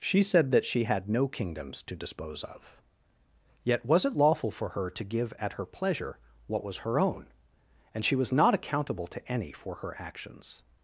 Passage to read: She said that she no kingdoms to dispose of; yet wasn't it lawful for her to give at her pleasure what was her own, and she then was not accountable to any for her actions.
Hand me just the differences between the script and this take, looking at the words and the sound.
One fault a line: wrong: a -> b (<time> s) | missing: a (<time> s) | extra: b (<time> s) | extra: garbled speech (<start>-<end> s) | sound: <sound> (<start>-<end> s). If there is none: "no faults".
extra: had (0.8 s)
wrong: wasn't -> was (3.9 s)
missing: then (8.2 s)